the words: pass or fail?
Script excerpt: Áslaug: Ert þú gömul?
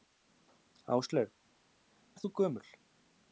pass